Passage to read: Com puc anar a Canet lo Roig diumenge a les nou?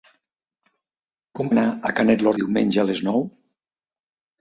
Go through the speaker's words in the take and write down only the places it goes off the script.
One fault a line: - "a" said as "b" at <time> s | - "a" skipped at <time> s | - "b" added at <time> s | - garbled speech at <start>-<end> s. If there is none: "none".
- "puc" skipped at 1.5 s
- "Roig" skipped at 2.3 s